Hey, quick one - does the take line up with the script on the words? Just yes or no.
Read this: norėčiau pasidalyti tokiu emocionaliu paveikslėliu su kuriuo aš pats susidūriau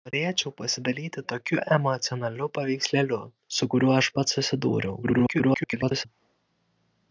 no